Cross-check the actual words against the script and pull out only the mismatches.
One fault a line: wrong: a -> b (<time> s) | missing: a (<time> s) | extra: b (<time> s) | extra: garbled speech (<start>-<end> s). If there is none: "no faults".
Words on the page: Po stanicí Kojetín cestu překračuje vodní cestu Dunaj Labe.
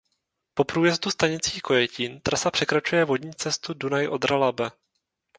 extra: průjezdu (0.6 s)
wrong: cestu -> trasa (2.2 s)
extra: Odra (4.1 s)